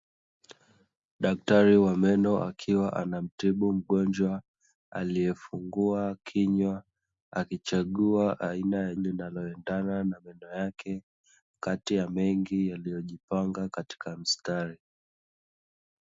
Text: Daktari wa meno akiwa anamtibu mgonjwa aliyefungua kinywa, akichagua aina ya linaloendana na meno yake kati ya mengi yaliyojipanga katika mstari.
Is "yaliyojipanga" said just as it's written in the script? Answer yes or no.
yes